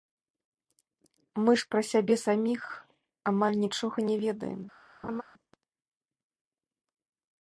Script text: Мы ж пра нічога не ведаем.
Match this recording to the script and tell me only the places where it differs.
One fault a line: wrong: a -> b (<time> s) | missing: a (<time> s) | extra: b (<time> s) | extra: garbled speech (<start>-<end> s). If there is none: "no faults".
extra: сябе саміх амаль (1.9 s)